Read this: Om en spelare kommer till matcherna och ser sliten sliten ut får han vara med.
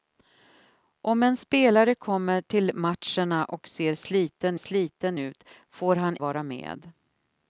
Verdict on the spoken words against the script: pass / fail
pass